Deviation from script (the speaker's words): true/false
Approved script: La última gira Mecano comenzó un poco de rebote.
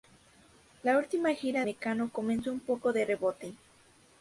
false